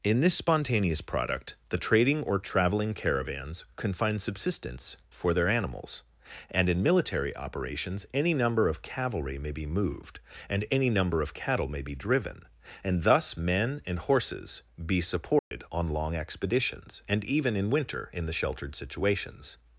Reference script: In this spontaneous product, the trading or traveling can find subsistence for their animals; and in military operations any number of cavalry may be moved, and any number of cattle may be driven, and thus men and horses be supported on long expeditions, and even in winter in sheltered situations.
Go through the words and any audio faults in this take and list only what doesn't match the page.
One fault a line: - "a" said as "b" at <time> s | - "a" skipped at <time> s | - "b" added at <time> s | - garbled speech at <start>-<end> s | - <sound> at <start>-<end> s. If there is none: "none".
- "caravans" added at 3.0 s
- dropout at 15.4-15.5 s
- "the" added at 18.2 s